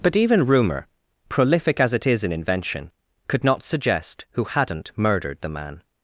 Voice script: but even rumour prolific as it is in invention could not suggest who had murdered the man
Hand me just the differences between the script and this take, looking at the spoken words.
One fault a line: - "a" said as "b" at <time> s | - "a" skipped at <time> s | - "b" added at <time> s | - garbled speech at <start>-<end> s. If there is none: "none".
- "had" said as "hadn't" at 4.4 s